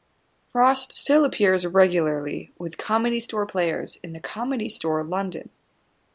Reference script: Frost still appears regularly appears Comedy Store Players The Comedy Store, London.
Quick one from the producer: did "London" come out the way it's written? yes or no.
yes